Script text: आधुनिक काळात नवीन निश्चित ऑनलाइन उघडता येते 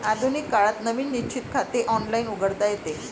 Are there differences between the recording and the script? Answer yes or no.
yes